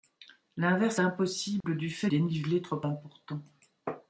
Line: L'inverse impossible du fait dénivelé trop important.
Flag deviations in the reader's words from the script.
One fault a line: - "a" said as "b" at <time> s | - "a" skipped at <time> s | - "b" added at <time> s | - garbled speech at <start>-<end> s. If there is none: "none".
none